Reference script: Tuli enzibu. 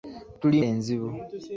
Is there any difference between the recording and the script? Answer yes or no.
no